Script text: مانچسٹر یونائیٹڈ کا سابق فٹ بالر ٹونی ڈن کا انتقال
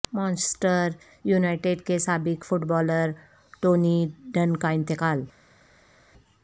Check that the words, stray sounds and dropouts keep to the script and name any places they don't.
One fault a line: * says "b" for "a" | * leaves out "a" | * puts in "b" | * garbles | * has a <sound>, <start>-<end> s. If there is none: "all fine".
* says "کے" for "کا"